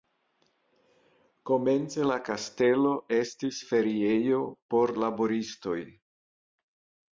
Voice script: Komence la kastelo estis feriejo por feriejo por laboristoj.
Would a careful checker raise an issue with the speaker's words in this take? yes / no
yes